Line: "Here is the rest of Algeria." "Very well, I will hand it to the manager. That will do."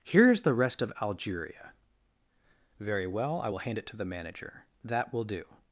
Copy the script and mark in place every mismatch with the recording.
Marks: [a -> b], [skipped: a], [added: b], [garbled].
"Here is the rest of Algeria." "Very well, I will hand it to the manager. That will do."